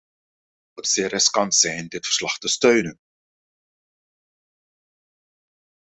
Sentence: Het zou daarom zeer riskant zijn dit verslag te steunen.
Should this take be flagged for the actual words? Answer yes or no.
yes